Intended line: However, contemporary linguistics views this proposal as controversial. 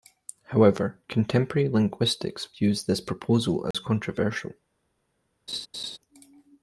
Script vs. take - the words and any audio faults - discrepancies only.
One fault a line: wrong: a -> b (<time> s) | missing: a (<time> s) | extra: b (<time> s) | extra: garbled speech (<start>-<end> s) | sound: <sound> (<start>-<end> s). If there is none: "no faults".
sound: dropout (3.7-3.7 s)
sound: laugh (5.5-6.0 s)